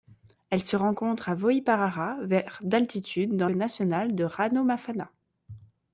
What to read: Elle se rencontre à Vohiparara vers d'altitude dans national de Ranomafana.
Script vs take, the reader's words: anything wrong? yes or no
no